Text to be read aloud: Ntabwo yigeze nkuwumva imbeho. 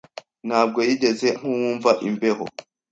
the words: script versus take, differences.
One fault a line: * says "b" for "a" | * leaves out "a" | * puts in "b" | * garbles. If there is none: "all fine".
all fine